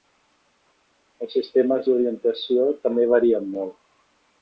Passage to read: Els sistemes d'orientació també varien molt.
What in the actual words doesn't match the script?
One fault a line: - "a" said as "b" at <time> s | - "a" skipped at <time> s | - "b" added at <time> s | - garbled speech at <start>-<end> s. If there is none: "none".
none